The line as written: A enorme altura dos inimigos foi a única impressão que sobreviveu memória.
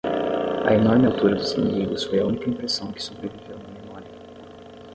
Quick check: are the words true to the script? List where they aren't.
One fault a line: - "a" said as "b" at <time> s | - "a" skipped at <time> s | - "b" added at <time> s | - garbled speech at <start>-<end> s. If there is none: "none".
- "na" added at 3.6 s